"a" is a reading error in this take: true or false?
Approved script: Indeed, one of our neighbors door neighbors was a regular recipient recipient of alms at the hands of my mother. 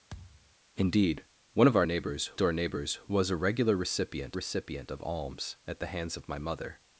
false